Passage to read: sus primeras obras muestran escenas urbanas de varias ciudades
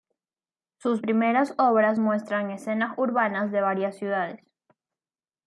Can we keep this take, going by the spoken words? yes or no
yes